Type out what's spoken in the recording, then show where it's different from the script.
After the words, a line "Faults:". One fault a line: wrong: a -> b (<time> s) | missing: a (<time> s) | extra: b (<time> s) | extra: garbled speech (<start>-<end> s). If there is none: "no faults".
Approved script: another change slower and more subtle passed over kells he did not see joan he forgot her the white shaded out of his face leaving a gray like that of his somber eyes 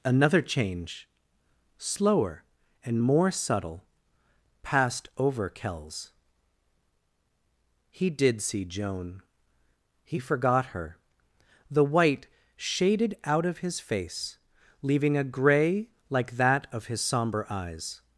another change slower and more subtle passed over kells he did see joan he forgot her the white shaded out of his face leaving a gray like that of his somber eyes
Faults:
missing: not (8.4 s)